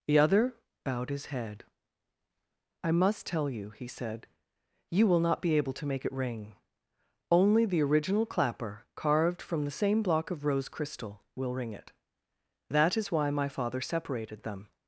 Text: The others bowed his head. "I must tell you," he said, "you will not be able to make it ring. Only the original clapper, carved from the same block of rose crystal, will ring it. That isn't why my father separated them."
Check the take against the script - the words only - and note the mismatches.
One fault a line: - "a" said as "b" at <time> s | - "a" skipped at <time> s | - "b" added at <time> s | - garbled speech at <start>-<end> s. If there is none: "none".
- "others" said as "other" at 0.2 s
- "isn't" said as "is" at 13.0 s